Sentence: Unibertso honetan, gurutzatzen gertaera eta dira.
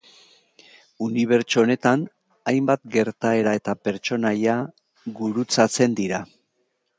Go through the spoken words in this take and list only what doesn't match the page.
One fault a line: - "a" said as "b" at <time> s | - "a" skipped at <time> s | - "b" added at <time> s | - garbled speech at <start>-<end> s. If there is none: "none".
- "gurutzatzen" said as "hainbat" at 2.5 s
- "pertsonaia gurutzatzen" added at 3.9 s